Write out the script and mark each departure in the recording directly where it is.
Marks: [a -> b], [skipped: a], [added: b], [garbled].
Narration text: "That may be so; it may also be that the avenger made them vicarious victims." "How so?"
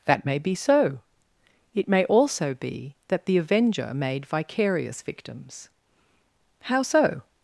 "That may be so; it may also be that the avenger made [skipped: them] vicarious victims." "How so?"